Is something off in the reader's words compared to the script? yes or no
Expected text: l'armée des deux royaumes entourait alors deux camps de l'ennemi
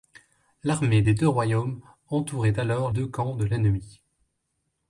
no